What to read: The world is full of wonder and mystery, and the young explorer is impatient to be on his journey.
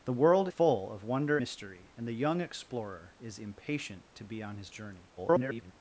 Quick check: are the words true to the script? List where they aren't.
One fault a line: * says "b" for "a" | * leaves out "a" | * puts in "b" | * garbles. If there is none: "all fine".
* leaves out "is"
* leaves out "and"
* garbles